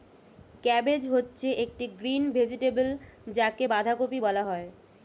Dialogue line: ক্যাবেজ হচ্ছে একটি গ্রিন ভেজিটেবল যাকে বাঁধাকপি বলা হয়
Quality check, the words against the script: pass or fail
pass